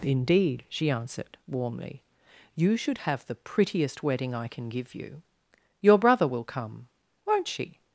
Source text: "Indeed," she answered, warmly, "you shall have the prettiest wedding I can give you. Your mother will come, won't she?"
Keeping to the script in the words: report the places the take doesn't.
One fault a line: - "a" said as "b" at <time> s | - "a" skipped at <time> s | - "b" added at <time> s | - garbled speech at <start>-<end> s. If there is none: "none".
- "shall" said as "should" at 2.8 s
- "mother" said as "brother" at 6.0 s